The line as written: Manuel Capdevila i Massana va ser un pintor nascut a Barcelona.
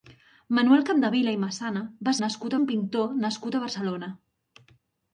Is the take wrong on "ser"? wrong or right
wrong